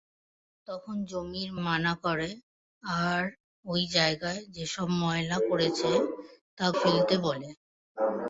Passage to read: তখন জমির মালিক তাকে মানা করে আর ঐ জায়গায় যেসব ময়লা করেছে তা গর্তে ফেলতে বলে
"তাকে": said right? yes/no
no